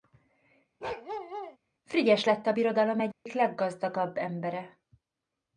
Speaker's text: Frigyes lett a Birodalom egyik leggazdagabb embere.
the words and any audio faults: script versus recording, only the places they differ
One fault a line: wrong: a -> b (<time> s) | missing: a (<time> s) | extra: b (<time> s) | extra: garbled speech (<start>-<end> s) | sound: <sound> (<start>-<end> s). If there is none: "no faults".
sound: bark (0.8-1.6 s)
sound: dropout (3.1-3.3 s)